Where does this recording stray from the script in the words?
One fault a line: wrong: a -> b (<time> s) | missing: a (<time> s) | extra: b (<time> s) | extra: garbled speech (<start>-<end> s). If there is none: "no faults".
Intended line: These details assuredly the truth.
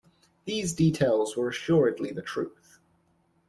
extra: were (1.4 s)